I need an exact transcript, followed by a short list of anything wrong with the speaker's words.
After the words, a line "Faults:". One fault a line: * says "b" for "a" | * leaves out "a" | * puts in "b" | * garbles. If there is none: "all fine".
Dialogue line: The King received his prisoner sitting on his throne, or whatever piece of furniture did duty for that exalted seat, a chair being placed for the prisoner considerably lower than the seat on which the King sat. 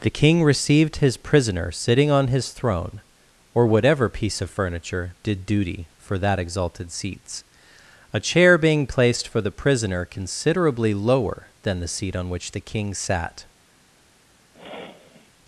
The King received his prisoner sitting on his throne, or whatever piece of furniture did duty for that exalted seats, a chair being placed for the prisoner considerably lower than the seat on which the King sat.
Faults:
* says "seats" for "seat"